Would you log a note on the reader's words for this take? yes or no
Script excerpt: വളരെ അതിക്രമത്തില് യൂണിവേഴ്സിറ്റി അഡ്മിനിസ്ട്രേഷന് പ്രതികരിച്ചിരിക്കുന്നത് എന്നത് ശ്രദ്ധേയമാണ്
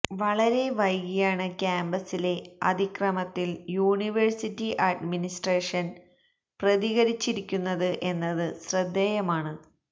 yes